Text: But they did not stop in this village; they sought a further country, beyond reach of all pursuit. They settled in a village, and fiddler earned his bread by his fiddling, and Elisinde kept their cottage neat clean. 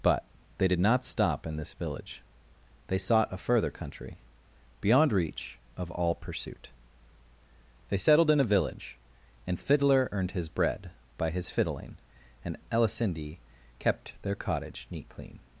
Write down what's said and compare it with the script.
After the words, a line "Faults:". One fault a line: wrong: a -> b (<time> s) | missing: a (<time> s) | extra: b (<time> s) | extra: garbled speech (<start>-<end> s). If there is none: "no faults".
But they did not stop in this village; they sought a further country, beyond reach of all pursuit. They settled in a village, and fiddler earned his bread by his fiddling, and Elisinde kept their cottage neat clean.
Faults:
no faults